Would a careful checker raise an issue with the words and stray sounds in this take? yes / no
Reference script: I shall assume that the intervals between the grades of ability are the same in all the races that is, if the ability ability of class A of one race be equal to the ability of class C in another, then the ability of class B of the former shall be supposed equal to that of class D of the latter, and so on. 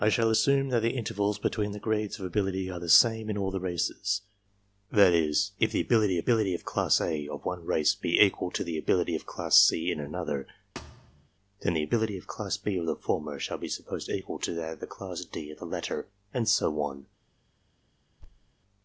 yes